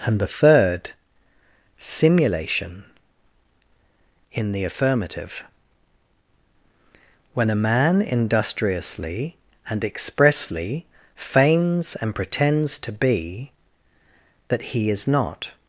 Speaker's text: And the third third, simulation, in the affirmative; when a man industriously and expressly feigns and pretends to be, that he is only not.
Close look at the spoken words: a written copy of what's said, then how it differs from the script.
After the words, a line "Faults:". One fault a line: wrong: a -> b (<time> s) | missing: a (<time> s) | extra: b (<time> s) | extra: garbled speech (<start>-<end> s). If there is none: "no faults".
And the third, simulation, in the affirmative; when a man industriously and expressly feigns and pretends to be, that he is not.
Faults:
missing: third (0.9 s)
missing: only (15.1 s)